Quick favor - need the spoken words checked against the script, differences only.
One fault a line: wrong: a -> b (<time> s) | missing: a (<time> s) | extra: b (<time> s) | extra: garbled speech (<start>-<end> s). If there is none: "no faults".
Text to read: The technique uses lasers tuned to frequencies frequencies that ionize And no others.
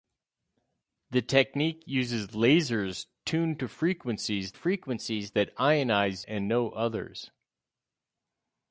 no faults